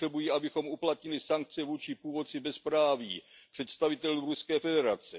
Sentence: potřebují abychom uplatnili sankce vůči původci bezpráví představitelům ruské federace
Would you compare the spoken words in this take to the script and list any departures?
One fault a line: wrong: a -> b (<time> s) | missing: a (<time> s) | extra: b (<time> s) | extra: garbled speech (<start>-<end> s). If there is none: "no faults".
no faults